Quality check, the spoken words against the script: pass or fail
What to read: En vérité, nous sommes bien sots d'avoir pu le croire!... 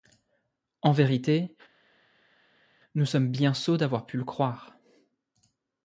pass